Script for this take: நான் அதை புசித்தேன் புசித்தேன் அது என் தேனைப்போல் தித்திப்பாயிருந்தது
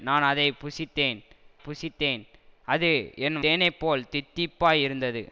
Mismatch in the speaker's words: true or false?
false